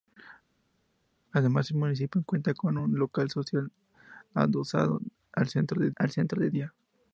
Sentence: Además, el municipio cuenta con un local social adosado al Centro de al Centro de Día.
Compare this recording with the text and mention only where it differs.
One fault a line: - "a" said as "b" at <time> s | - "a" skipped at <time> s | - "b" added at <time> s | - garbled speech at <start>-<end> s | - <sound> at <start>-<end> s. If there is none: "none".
none